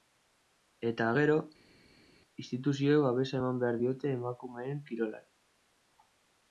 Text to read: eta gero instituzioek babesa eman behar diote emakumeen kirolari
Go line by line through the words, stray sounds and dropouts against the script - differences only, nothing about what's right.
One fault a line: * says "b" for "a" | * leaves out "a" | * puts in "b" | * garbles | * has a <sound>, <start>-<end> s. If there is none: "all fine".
all fine